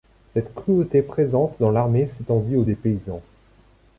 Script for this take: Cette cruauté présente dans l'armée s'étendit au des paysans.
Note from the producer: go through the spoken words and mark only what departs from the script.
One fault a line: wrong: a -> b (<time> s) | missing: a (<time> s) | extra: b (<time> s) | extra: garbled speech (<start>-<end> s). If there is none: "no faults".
no faults